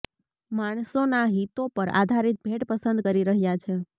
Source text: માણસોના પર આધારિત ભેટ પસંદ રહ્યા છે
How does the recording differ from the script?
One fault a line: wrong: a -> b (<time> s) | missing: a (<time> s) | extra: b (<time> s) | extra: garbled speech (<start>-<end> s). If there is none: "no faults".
extra: હિતો (1.3 s)
extra: કરી (3.0 s)